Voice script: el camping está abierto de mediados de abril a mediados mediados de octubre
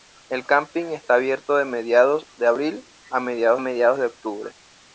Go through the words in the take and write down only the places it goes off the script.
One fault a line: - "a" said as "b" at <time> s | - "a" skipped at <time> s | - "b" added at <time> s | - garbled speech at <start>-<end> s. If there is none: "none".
none